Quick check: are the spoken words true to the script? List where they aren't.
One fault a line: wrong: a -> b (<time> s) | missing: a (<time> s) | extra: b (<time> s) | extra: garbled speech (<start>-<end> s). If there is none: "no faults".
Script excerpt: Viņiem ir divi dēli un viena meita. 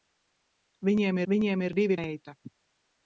extra: viņiem (1.3 s)
missing: dēli un viena (2.0 s)